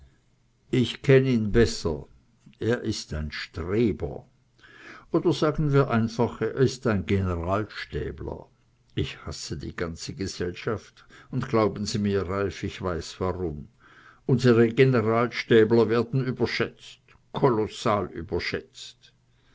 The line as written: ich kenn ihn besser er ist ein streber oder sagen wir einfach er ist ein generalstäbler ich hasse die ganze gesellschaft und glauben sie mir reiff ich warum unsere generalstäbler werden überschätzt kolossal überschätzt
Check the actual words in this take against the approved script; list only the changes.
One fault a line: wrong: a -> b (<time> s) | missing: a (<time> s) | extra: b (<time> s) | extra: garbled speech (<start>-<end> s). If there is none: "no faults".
extra: weiß (12.8 s)